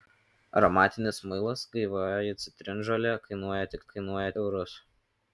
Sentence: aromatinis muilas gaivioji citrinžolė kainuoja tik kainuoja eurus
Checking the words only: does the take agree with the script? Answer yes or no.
yes